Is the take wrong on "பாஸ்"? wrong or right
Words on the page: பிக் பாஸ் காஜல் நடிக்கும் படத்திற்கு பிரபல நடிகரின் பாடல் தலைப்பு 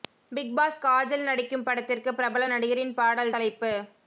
right